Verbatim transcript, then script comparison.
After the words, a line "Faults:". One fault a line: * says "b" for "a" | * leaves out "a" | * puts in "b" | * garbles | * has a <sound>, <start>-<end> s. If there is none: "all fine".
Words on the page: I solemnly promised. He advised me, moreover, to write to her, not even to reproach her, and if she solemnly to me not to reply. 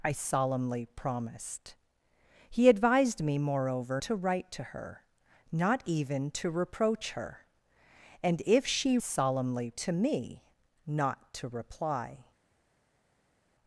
I solemnly promised. He advised me, moreover, to write to her, not even to reproach her, and if she solemnly to me not to reply.
Faults:
all fine